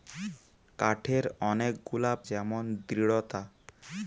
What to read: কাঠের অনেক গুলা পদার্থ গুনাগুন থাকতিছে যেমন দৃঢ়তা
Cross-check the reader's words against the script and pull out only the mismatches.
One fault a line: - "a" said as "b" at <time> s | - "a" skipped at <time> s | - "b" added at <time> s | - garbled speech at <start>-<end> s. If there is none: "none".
- "পদার্থ গুনাগুন থাকতিছে" skipped at 2.1 s